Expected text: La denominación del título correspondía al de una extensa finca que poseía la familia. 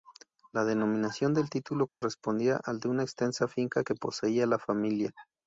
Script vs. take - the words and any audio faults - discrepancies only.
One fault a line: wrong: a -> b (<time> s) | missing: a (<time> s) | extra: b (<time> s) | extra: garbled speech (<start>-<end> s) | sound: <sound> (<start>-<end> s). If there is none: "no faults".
sound: dropout (1.9-2.0 s)